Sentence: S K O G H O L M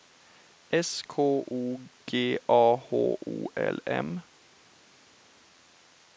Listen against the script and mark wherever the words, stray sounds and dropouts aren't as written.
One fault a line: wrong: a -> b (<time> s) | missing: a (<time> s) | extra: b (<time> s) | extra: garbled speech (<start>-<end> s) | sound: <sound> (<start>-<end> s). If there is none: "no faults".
extra: A (2.5 s)